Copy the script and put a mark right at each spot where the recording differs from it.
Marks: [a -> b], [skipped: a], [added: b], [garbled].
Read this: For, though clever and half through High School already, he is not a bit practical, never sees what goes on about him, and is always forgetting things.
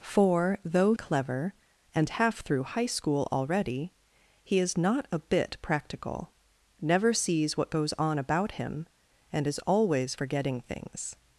For, though clever and half through High School already, he is not a bit practical, never sees what goes on about him, and is always forgetting things.